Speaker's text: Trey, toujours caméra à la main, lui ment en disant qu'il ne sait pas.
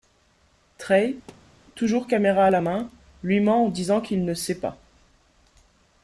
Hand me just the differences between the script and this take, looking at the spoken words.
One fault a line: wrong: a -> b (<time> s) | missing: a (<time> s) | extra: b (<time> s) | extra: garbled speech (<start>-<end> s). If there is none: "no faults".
no faults